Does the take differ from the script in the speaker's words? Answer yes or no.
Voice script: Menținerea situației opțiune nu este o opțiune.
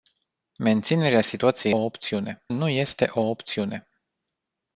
no